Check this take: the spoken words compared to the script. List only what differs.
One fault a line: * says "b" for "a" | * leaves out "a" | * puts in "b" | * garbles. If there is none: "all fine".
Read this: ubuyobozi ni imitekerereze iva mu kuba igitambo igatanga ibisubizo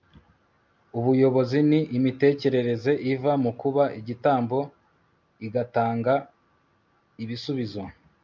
all fine